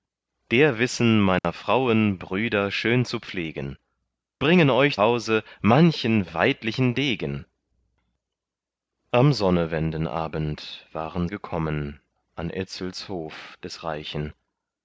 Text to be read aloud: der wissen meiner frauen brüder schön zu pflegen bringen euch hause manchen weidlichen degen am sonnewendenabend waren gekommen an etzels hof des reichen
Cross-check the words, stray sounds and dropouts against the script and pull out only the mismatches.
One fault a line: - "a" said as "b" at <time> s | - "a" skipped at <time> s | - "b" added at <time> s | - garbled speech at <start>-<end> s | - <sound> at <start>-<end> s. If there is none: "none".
- dropout at 1.4-1.4 s